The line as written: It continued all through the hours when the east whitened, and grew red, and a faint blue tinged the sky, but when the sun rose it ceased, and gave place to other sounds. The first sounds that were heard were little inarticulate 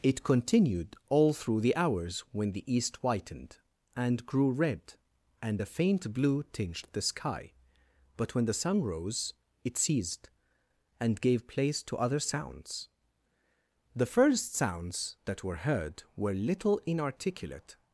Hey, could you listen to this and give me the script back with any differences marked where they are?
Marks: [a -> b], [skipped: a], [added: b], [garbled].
It continued all through the hours when the east whitened, and grew red, and a faint blue tinged the sky, but when the sun rose it ceased, and gave place to other sounds. The first sounds that were heard were little inarticulate